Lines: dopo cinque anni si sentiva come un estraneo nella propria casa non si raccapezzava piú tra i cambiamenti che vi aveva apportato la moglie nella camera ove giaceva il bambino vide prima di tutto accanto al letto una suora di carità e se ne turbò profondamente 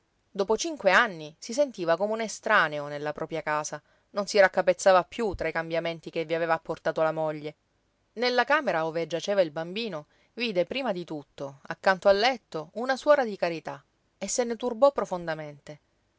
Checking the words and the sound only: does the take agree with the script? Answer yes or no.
yes